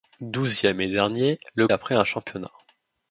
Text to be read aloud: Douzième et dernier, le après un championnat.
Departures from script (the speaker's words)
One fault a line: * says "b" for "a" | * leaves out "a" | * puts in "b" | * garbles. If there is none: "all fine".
all fine